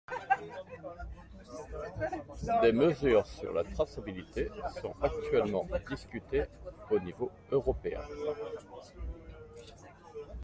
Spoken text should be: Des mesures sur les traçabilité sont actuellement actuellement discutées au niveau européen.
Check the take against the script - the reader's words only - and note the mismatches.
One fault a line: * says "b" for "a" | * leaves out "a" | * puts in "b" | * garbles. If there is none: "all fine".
* says "la" for "les"
* leaves out "actuellement"